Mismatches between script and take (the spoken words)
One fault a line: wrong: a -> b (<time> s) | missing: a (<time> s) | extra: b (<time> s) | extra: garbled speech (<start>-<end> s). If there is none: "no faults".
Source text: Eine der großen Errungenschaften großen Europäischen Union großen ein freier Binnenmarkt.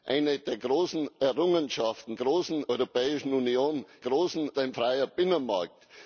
no faults